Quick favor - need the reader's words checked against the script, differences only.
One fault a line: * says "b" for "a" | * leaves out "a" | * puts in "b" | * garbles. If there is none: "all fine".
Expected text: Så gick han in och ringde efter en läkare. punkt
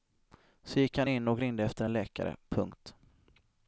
all fine